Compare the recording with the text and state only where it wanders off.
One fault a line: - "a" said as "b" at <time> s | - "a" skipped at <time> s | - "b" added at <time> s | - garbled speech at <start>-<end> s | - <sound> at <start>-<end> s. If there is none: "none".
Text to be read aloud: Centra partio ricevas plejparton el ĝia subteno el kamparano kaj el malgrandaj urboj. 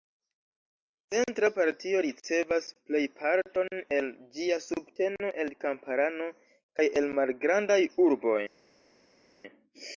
none